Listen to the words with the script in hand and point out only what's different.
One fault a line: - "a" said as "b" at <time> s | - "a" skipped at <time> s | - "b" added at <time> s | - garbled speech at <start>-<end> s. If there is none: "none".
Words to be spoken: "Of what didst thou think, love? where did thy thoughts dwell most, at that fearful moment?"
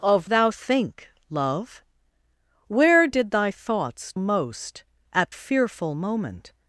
- "what didst" skipped at 0.3 s
- "dwell" skipped at 4.1 s
- "that" skipped at 5.3 s